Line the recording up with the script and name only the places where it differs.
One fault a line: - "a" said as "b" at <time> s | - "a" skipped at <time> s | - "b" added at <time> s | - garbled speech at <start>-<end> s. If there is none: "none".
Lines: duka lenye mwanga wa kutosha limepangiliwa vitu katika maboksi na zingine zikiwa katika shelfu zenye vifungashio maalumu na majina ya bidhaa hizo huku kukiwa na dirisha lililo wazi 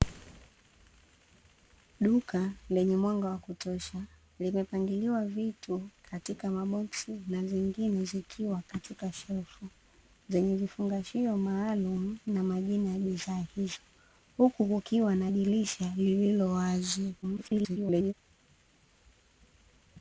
- garbled speech at 17.2-18.1 s